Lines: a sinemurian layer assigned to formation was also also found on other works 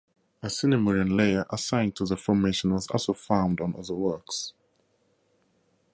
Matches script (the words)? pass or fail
fail